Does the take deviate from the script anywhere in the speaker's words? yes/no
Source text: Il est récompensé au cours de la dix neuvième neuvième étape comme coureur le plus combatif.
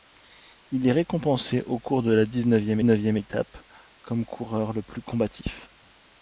no